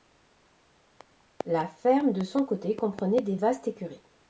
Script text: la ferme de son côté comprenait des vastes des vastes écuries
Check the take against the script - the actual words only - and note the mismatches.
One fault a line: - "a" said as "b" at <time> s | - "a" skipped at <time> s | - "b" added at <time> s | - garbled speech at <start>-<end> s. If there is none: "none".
- "des vastes" skipped at 3.7 s